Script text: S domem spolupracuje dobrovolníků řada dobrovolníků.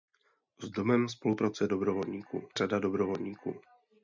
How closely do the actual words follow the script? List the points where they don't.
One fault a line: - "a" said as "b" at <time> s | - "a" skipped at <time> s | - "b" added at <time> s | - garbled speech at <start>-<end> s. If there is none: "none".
none